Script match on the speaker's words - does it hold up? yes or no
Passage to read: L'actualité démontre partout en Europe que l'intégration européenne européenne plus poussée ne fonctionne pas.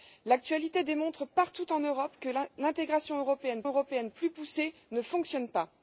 yes